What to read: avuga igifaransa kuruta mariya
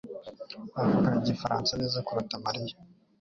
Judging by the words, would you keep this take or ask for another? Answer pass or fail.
fail